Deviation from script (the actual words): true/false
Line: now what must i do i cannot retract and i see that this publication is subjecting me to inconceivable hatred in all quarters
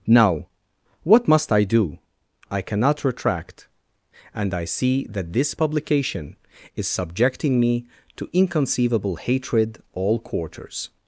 true